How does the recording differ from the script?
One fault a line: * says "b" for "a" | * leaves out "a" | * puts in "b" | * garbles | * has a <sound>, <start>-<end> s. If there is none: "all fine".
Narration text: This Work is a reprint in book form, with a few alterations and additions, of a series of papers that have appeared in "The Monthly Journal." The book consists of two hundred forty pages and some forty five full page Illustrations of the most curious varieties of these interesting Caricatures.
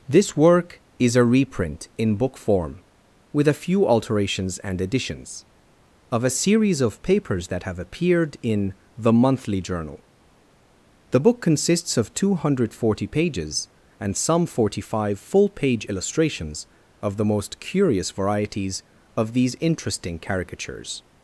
all fine